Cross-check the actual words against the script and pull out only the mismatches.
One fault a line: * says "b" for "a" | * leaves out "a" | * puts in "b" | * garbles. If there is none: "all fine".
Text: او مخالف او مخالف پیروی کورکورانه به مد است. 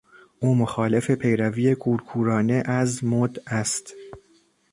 * leaves out "او مخالف"
* says "از" for "به"